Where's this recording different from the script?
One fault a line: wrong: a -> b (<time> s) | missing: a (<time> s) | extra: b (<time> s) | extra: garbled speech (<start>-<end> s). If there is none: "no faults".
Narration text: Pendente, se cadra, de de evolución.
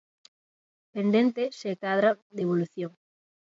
missing: de (2.4 s)